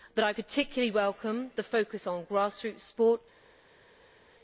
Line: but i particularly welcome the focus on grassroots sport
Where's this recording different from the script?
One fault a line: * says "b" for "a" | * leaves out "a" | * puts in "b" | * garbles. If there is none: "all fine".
all fine